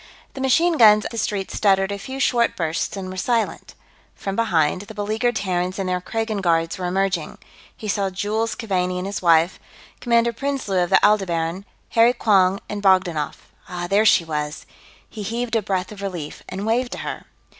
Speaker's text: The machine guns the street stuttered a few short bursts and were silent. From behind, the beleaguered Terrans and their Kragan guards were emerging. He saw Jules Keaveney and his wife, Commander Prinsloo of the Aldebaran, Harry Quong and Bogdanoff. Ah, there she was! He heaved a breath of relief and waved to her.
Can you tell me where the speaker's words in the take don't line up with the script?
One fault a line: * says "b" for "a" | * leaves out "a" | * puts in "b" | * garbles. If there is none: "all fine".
all fine